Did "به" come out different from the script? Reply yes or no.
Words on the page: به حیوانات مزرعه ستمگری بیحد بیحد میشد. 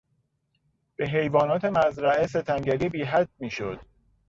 no